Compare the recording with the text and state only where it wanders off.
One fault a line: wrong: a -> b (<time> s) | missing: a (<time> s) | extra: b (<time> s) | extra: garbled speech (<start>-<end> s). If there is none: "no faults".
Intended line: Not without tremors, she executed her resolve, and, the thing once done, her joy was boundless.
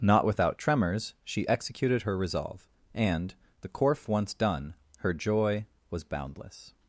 wrong: thing -> corf (3.7 s)